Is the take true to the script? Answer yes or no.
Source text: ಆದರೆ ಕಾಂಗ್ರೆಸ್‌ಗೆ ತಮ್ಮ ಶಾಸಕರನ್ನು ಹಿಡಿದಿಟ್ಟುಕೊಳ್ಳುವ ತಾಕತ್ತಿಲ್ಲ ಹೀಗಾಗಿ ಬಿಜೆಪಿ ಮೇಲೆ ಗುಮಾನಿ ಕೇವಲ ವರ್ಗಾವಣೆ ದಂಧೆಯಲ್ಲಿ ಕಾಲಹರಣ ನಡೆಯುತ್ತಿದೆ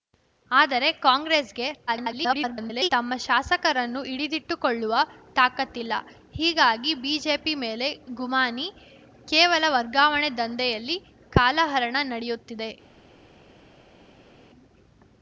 no